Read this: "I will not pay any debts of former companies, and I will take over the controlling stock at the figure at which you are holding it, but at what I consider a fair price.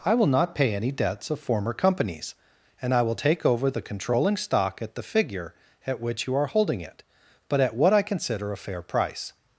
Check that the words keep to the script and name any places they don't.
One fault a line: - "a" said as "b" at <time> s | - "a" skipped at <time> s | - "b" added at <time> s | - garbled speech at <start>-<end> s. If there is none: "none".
none